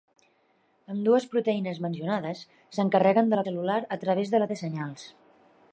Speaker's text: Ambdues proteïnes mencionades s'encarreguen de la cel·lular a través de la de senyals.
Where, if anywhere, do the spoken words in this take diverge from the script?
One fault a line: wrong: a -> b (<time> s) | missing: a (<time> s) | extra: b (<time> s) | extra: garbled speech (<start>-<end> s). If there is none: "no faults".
no faults